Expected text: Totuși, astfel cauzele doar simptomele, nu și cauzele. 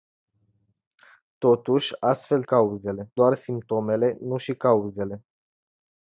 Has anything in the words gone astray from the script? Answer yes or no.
no